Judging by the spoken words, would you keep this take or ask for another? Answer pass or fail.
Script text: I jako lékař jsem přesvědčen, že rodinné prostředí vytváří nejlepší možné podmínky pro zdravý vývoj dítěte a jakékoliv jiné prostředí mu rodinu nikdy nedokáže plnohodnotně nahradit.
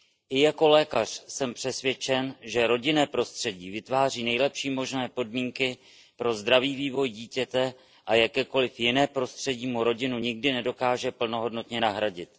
pass